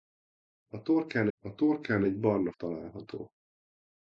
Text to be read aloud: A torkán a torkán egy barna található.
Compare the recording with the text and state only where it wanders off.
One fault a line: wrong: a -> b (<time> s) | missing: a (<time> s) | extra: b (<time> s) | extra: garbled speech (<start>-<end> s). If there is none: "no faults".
no faults